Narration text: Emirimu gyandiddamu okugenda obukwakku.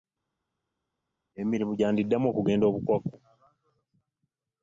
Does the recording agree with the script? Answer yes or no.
yes